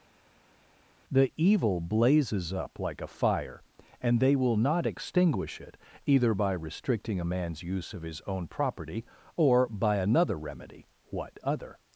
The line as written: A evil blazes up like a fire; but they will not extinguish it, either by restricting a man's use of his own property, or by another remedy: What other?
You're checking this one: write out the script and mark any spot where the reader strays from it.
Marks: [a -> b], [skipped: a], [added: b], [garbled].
[A -> The] evil blazes up like a fire; [but -> and] they will not extinguish it, either by restricting a man's use of his own property, or by another remedy: What other?